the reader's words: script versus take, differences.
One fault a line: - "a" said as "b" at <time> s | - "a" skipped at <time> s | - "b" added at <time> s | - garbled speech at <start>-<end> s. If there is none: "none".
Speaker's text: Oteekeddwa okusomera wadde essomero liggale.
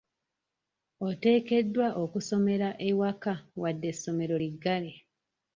- "ewaka" added at 2.9 s